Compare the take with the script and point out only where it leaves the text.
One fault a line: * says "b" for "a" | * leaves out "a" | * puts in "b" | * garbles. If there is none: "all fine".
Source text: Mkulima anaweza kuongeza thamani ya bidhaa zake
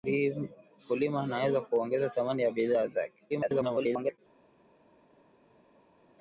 * garbles